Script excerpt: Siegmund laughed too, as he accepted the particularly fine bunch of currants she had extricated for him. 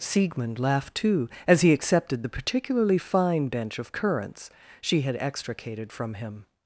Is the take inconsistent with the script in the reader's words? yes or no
yes